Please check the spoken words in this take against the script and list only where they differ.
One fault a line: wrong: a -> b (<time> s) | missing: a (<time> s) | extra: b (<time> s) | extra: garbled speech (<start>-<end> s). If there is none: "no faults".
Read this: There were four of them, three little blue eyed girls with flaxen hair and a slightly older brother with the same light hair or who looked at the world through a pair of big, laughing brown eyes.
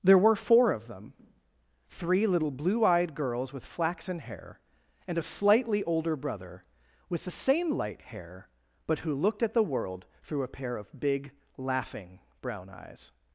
wrong: or -> but (8.9 s)